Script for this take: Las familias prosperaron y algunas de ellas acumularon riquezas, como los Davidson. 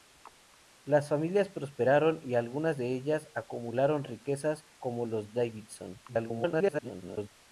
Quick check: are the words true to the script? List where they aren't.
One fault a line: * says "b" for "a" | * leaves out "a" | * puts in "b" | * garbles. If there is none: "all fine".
* garbles